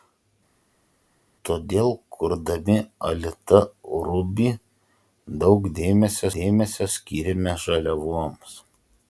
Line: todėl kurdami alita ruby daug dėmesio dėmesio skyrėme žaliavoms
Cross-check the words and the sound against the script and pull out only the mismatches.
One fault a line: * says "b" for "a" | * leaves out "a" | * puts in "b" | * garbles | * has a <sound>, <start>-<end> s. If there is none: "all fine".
all fine